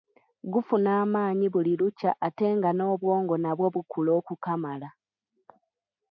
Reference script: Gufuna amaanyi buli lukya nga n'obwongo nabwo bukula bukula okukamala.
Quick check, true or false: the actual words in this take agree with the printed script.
false